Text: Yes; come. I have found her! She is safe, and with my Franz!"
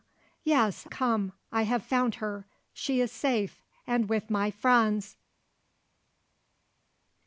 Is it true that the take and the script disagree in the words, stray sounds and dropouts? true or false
false